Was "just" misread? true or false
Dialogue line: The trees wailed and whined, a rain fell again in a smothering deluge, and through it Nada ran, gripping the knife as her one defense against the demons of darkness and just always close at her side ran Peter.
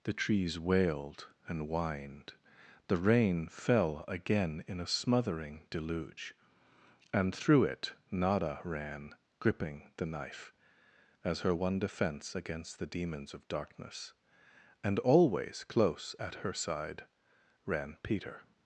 true